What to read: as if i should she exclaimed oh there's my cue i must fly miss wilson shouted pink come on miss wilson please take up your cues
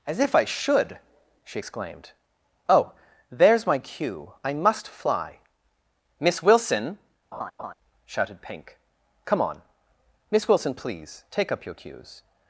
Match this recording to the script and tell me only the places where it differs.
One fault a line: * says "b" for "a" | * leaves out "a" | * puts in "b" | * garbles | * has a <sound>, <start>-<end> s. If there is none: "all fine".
* has a laugh, 7.3-7.7 s